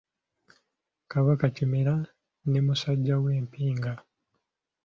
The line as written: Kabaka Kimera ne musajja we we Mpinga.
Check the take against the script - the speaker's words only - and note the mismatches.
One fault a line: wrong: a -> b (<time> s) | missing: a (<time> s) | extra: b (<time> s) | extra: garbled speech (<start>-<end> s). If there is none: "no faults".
missing: we (3.3 s)